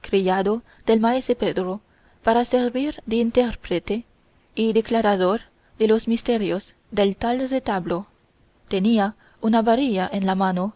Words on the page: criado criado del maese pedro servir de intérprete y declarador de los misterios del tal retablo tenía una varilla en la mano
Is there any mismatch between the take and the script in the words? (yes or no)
yes